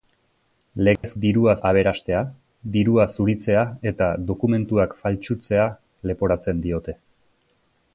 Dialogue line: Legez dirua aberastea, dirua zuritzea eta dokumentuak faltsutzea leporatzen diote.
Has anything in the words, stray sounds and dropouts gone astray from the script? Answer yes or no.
yes